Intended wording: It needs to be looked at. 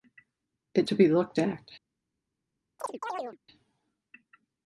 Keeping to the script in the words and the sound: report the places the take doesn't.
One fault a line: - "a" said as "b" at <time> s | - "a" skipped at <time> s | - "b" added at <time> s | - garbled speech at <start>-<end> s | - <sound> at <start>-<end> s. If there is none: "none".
- "needs" skipped at 0.9 s
- chirp at 2.8-3.4 s